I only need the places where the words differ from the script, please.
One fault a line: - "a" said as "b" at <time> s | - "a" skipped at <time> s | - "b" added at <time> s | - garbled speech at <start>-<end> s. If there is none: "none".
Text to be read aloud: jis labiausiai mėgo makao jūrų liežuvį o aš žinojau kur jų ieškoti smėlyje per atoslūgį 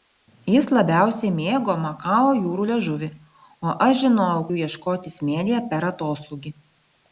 - "kur" skipped at 4.5 s